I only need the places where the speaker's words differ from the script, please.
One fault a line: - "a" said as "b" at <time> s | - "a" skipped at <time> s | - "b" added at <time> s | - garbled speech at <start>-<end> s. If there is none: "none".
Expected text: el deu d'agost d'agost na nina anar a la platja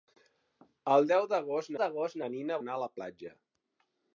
none